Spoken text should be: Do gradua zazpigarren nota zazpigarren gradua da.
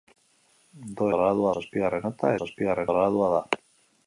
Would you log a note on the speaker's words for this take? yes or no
no